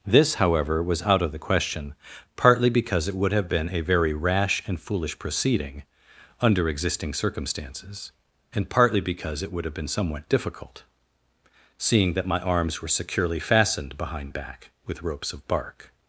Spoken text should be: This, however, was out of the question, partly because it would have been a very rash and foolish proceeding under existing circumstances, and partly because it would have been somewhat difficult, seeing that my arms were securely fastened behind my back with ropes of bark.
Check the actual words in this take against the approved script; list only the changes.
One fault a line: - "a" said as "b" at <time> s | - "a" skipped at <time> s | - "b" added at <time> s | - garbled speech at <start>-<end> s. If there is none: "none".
- "my" skipped at 14.3 s